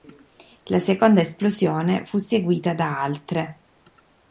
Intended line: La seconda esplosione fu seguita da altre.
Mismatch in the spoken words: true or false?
false